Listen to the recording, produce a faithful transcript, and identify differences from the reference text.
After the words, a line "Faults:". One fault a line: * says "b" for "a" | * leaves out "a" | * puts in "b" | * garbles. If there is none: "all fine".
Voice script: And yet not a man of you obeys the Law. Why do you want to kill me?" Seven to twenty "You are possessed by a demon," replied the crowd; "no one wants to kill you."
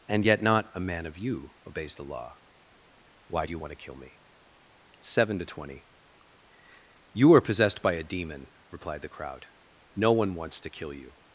And yet not a man of you obeys the Law. Why do you want to kill me?" Seven to twenty "You are possessed by a demon," replied the crowd; "no one wants to kill you."
Faults:
all fine